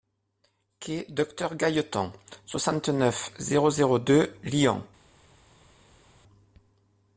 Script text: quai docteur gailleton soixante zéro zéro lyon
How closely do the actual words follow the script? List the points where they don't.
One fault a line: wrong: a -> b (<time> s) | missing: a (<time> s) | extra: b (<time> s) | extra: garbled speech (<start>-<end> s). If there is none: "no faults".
extra: neuf (2.9 s)
extra: deux (4.0 s)